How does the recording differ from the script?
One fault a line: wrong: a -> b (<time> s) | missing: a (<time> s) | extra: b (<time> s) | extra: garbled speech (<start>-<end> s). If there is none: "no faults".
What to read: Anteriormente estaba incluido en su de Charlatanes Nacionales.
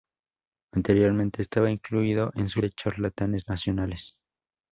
no faults